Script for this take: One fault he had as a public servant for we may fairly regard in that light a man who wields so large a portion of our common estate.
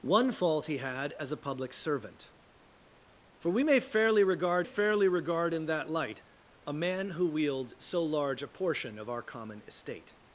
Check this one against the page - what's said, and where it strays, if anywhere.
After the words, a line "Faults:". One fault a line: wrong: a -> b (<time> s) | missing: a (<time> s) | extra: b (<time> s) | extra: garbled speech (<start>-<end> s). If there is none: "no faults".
One fault he had as a public servant for we may fairly regard fairly regard in that light a man who wields so large a portion of our common estate.
Faults:
extra: fairly regard (4.6 s)